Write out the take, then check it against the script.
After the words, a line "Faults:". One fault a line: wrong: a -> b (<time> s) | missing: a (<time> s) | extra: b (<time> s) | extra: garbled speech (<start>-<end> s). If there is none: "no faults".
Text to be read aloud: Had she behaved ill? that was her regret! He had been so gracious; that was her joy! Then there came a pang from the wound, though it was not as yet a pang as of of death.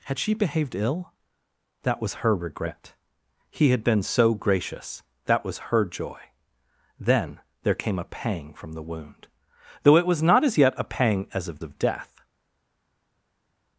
Had she behaved ill? that was her regret! He had been so gracious; that was her joy! Then there came a pang from the wound, though it was not as yet a pang as of of death.
Faults:
no faults